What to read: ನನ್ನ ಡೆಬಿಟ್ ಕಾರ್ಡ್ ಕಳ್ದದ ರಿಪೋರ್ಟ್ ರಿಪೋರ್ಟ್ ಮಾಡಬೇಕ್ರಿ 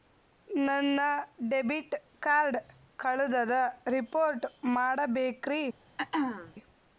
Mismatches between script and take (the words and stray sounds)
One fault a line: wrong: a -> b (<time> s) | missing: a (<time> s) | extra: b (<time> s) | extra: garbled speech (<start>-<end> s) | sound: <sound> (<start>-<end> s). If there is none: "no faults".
missing: ರಿಪೋರ್ಟ್ (4.5 s)
sound: throat clearing (6.0-6.5 s)